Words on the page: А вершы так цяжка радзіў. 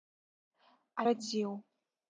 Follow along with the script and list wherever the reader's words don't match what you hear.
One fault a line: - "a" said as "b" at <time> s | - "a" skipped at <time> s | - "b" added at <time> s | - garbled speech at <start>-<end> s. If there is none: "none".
- "вершы так цяжка" skipped at 1.1 s